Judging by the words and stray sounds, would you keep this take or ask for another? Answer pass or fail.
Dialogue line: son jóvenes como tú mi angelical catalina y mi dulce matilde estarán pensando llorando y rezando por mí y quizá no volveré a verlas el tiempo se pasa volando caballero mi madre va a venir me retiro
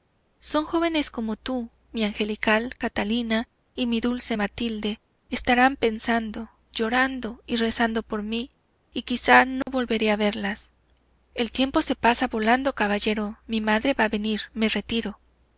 fail